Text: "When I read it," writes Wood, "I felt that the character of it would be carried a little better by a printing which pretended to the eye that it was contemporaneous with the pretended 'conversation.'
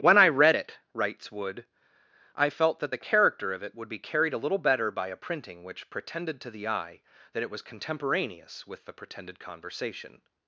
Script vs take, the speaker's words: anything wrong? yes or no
no